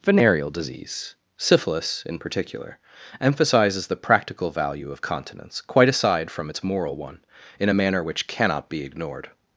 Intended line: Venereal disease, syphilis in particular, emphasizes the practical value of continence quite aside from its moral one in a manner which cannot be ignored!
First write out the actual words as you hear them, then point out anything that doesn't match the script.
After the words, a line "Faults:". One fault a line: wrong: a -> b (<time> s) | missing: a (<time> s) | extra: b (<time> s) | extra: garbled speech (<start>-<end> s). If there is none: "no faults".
Venereal disease, syphilis in particular, emphasizes the practical value of continence quite aside from its moral one in a manner which cannot be ignored!
Faults:
no faults